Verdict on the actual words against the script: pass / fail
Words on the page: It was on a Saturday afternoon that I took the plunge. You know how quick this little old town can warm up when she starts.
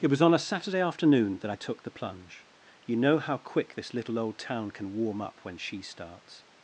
pass